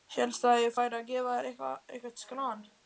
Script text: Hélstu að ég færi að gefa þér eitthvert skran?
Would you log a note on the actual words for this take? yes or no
no